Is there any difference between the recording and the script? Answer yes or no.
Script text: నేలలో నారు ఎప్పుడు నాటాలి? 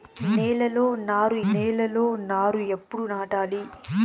yes